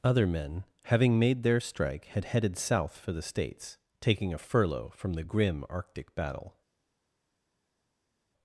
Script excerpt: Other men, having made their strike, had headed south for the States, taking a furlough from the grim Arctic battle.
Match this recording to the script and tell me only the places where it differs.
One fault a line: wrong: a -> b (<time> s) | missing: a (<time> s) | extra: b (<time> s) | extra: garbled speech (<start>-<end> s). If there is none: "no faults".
no faults